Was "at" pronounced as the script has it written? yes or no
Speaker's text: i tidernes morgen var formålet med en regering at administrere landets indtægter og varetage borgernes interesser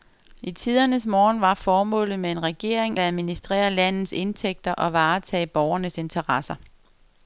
no